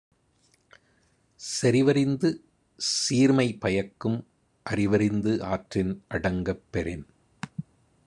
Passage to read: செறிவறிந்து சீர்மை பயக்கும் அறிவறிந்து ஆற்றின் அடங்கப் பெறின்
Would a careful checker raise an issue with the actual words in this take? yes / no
no